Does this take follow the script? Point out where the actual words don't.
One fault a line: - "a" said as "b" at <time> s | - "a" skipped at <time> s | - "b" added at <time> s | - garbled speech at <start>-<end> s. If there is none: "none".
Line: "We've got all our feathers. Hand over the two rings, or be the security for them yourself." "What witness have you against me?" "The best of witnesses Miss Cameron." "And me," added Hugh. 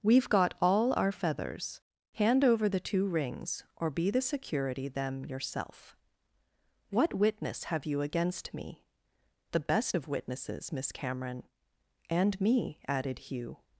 - "for" skipped at 4.9 s